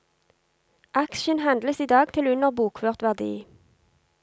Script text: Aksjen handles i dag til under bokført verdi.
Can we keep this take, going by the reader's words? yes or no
yes